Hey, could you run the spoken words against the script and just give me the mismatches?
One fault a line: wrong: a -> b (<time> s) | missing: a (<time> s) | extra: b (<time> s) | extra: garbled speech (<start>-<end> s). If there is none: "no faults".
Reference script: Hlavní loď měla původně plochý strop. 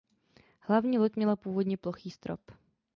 no faults